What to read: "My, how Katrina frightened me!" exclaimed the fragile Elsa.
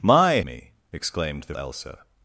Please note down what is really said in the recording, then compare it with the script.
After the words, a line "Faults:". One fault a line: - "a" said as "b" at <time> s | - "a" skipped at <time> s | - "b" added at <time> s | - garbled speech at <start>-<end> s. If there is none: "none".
"My, me!" exclaimed the Elsa.
Faults:
- "how Katrina frightened" skipped at 0.4 s
- "fragile" skipped at 1.5 s